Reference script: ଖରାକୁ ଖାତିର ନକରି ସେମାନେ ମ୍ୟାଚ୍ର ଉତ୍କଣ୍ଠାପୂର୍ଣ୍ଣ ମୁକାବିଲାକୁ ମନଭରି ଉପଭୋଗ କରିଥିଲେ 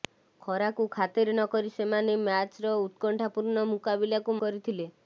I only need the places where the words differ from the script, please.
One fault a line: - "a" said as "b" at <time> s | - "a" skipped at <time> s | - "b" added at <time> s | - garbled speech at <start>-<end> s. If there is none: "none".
- "ମନଭରି ଉପଭୋଗ" skipped at 4.4 s